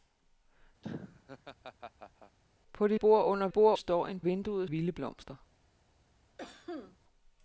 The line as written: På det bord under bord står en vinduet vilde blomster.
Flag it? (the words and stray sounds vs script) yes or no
yes